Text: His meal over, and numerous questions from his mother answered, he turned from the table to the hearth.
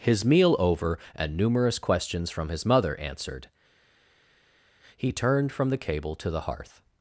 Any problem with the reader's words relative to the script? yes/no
yes